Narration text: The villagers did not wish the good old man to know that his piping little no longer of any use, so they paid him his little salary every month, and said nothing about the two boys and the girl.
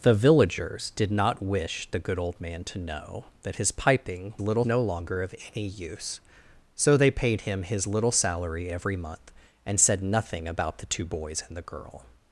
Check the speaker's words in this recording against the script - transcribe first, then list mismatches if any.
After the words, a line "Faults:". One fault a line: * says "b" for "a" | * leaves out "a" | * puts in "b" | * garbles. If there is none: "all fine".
The villagers did not wish the good old man to know that his piping little no longer of any use, so they paid him his little salary every month, and said nothing about the two boys and the girl.
Faults:
all fine